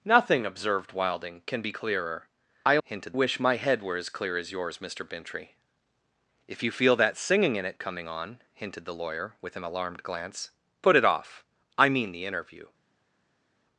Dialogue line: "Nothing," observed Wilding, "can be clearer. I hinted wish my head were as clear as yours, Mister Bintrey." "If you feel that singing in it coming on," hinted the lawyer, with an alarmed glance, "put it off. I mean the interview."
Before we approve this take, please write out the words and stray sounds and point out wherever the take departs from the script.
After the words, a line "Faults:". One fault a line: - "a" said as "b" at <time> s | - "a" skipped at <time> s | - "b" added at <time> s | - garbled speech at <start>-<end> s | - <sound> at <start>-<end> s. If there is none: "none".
"Nothing," observed Wilding, "can be clearer. I hinted wish my head were as clear as yours, Mister Bintrey." "If you feel that singing in it coming on," hinted the lawyer, with an alarmed glance, "put it off. I mean the interview."
Faults:
none